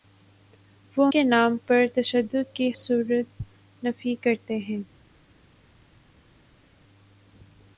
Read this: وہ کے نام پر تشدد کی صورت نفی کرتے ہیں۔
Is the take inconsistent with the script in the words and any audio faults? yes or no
no